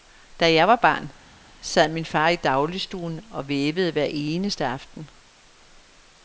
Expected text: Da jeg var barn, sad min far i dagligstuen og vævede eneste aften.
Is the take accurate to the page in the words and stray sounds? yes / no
no